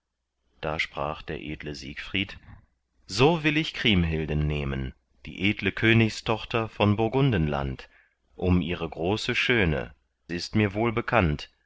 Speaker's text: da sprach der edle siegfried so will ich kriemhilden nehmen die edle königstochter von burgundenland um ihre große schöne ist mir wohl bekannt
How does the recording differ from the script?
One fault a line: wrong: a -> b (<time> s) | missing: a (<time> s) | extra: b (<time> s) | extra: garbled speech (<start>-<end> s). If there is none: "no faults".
no faults